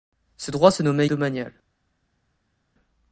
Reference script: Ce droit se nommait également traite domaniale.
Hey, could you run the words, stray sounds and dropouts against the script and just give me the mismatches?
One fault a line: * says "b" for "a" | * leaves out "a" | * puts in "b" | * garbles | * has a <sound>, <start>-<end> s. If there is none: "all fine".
* leaves out "également traite"